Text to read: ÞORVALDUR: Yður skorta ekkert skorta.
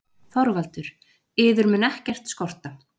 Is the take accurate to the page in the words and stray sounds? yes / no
no